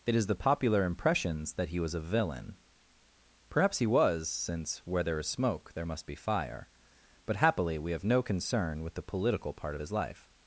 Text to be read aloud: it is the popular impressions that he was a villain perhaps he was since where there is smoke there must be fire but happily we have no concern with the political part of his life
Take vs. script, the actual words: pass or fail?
pass